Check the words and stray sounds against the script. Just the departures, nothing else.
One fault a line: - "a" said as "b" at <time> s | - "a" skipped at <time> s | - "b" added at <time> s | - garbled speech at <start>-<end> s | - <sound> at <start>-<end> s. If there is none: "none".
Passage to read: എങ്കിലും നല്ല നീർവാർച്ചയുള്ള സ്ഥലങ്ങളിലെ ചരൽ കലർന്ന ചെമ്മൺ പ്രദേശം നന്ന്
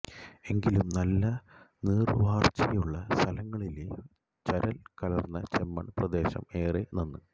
- "ഏറെ" added at 6.5 s